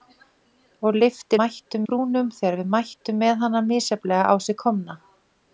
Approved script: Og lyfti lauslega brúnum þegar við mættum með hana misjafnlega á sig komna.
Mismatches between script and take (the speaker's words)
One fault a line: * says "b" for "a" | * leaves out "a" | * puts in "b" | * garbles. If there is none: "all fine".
* says "mættum" for "lauslega"